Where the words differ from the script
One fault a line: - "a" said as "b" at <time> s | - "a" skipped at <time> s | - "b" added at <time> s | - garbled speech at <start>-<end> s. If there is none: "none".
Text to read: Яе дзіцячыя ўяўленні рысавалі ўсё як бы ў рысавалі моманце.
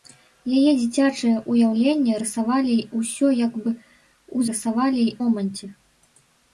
none